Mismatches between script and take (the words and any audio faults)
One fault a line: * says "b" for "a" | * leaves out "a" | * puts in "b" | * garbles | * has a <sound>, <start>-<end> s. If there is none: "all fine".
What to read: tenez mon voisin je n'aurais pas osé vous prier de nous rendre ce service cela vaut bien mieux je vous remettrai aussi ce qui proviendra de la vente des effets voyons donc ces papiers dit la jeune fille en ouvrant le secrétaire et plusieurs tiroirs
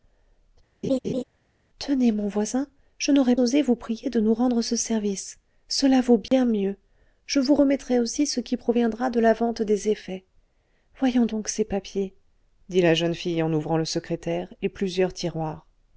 * has a laugh, 0.8-1.2 s
* leaves out "pas"
* has a dropout, 6.3-6.3 s